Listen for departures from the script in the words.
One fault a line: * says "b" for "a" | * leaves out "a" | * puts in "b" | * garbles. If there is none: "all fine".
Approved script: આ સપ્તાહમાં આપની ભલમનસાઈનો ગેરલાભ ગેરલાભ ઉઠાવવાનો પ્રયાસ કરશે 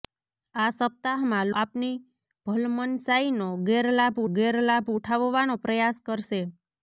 all fine